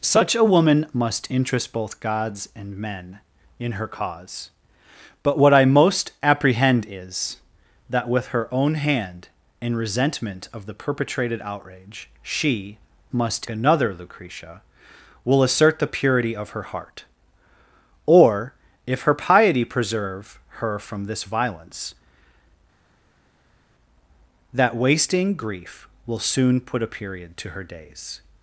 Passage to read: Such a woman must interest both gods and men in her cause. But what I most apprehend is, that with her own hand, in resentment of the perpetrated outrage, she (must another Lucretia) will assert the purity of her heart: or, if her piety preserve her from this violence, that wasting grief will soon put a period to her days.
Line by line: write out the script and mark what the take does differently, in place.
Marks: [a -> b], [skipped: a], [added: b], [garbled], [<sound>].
Such a woman must interest both gods and men in her cause. But what I most apprehend is, that with her own hand, in resentment of the perpetrated outrage, she (must another Lucretia) will assert the purity of her heart: or, if her piety preserve her from this violence, that wasting grief will soon put a period to her days.